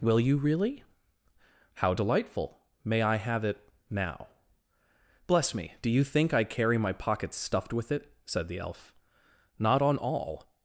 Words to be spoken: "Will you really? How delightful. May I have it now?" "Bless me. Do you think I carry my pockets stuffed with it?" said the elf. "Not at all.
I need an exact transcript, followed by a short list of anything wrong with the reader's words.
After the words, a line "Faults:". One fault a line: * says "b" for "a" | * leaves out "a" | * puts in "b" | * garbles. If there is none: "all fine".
"Will you really? How delightful. May I have it now?" "Bless me. Do you think I carry my pockets stuffed with it?" said the elf. "Not on all.
Faults:
* says "on" for "at"